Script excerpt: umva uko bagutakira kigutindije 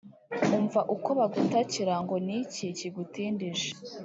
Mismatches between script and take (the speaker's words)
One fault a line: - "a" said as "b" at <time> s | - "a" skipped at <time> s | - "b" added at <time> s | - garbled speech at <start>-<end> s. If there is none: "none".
- "ngo n'iki" added at 2.0 s